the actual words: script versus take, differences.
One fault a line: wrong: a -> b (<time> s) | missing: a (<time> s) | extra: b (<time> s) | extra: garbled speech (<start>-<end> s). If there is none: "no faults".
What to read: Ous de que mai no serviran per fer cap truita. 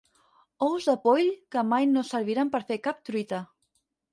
extra: poll (1.1 s)